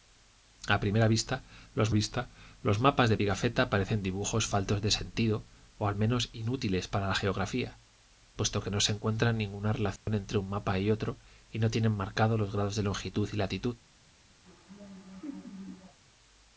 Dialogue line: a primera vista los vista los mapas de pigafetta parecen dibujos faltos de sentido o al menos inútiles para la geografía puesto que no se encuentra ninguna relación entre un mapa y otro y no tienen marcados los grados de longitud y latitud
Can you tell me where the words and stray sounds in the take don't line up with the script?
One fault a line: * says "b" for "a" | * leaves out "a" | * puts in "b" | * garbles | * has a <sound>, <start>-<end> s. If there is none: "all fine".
* has a dropout, 10.0-10.1 s
* has a laugh, 14.4-16.0 s